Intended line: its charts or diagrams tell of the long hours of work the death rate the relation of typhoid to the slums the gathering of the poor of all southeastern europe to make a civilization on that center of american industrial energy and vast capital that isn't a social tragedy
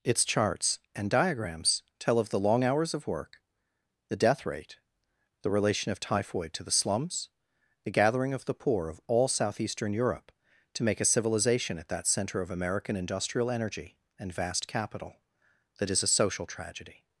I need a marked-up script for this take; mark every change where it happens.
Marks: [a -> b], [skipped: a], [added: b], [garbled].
its charts [or -> and] diagrams tell of the long hours of work the death rate the relation of typhoid to the slums the gathering of the poor of all southeastern europe to make a civilization [on -> at] that center of american industrial energy and vast capital that [isn't -> is] a social tragedy